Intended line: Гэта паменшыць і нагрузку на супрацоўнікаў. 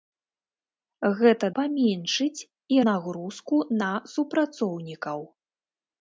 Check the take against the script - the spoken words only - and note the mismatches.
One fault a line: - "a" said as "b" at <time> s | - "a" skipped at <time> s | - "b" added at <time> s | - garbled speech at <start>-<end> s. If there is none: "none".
none